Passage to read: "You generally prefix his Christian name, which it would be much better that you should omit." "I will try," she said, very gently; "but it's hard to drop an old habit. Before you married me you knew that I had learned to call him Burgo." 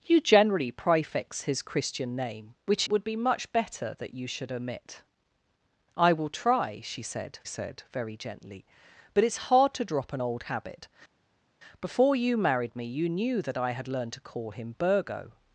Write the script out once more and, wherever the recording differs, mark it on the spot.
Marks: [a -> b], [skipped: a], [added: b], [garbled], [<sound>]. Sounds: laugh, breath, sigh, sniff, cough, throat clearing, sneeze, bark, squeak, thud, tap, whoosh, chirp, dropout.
"You generally prefix his Christian name, which [skipped: it] would be much better that you should omit." "I will try," she said, [added: said] very gently; "but it's hard to drop an old habit. Before you married me you knew that I had learned to call him Burgo."